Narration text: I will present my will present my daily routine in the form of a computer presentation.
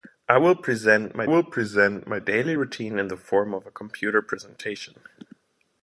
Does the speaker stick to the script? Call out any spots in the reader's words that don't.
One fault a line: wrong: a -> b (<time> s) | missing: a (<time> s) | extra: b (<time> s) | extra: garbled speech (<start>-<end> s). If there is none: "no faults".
no faults